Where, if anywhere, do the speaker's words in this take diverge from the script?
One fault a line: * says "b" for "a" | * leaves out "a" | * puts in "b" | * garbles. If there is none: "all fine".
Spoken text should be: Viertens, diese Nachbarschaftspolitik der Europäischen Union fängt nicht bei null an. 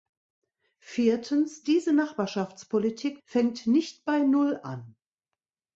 * leaves out "der Europäischen Union"